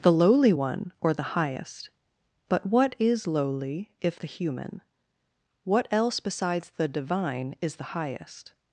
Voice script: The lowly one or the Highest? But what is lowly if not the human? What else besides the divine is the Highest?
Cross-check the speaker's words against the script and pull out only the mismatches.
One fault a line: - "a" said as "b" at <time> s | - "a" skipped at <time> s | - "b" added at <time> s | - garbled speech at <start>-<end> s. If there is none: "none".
- "not" skipped at 4.2 s